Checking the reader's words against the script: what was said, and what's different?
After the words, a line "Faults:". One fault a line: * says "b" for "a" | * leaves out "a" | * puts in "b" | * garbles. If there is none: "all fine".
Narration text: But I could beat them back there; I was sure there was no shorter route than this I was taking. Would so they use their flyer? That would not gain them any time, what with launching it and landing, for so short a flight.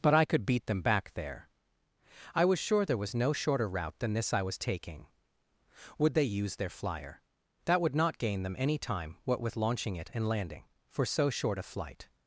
But I could beat them back there; I was sure there was no shorter route than this I was taking. Would they use their flyer? That would not gain them any time, what with launching it and landing, for so short a flight.
Faults:
* leaves out "so"